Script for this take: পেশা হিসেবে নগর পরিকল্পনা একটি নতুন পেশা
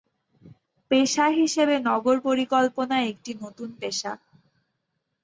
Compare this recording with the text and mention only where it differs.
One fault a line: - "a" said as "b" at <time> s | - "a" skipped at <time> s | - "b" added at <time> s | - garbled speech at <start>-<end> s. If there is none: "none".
none